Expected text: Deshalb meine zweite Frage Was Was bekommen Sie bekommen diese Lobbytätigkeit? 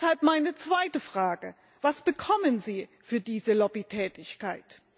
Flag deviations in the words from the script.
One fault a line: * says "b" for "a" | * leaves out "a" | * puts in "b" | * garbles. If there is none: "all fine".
* leaves out "Was"
* says "für" for "bekommen"